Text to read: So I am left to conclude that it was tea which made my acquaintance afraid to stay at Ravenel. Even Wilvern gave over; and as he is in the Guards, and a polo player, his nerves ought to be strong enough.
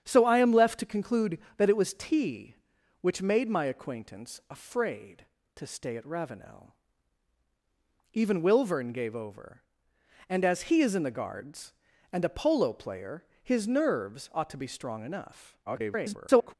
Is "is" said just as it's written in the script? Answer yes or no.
yes